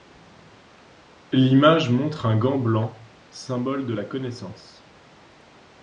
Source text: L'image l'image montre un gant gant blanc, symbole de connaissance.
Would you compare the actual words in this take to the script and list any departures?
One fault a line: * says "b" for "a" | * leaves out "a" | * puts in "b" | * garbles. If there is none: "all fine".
* leaves out "l'image"
* leaves out "gant"
* puts in "la"